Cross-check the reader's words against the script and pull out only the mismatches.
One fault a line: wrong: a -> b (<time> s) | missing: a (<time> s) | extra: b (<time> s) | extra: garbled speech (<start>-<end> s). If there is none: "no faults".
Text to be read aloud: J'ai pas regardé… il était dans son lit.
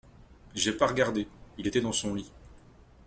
no faults